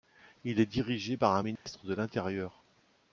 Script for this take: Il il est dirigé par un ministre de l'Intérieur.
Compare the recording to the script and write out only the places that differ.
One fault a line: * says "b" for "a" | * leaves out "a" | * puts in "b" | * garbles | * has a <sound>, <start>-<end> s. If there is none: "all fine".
* leaves out "il"
* has a dropout, 1.6-1.7 s